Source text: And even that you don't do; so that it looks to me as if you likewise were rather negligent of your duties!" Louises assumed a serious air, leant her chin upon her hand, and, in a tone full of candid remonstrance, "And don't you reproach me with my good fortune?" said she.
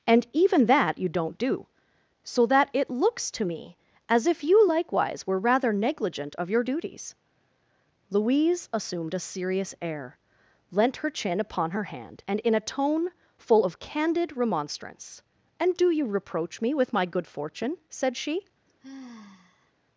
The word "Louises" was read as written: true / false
false